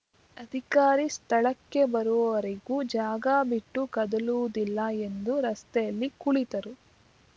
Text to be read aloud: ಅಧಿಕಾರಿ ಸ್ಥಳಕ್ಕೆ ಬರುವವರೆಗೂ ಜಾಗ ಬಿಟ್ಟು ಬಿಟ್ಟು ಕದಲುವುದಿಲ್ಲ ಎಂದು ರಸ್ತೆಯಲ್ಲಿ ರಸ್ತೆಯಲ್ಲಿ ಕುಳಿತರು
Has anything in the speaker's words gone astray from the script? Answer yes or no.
yes